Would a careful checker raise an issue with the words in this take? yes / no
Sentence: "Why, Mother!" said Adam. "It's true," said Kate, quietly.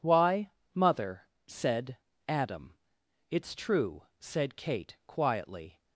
no